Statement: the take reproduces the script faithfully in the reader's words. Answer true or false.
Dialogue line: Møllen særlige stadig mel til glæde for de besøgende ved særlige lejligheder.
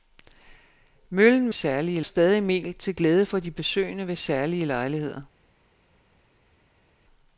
true